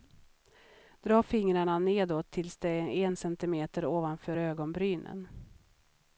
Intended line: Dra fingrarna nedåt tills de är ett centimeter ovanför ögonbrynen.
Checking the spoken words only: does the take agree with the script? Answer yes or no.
no